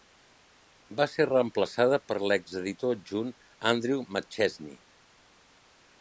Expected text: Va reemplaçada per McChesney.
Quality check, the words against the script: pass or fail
fail